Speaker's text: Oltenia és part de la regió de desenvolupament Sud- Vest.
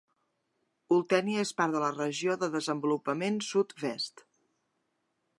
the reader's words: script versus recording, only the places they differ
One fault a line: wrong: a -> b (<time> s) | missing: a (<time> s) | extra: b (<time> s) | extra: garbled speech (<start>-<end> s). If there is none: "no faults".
no faults